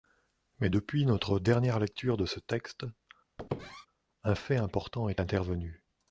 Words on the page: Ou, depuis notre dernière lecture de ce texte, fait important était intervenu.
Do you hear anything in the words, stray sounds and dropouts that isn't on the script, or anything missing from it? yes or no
yes